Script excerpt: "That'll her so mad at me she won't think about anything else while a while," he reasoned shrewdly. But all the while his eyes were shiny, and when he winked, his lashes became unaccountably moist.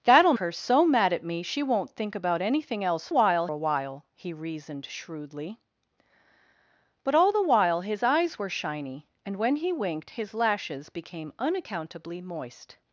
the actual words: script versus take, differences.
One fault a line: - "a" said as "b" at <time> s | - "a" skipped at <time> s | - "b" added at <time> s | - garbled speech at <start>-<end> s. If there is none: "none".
none